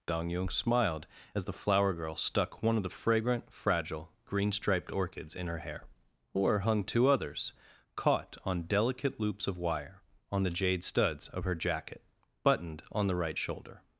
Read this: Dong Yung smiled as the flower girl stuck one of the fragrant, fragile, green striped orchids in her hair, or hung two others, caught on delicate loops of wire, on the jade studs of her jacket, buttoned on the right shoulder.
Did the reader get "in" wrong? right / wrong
right